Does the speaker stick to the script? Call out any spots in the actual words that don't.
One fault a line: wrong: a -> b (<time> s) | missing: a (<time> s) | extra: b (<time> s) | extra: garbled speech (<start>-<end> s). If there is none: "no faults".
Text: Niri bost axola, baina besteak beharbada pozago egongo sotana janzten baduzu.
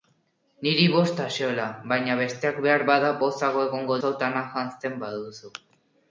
no faults